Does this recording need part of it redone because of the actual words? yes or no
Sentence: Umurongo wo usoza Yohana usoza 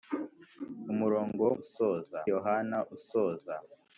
no